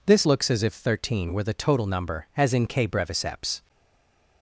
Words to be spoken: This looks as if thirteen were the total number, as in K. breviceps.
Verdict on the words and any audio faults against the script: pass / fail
pass